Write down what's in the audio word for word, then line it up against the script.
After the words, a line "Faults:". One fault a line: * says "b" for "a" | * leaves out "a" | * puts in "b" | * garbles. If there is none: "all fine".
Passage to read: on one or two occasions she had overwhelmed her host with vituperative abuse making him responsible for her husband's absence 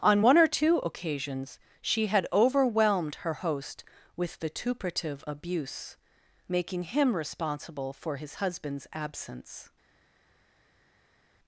on one or two occasions she had overwhelmed her host with vituperative abuse making him responsible for his husband's absence
Faults:
* says "his" for "her"